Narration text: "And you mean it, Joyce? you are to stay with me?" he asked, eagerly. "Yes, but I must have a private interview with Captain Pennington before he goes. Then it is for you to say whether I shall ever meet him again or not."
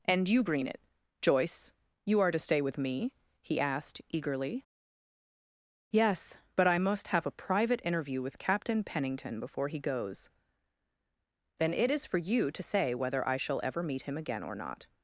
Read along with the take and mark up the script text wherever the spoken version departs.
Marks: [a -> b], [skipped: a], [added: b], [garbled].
"And you [mean -> green] it, Joyce? you are to stay with me?" he asked, eagerly. "Yes, but I must have a private interview with Captain Pennington before he goes. Then it is for you to say whether I shall ever meet him again or not."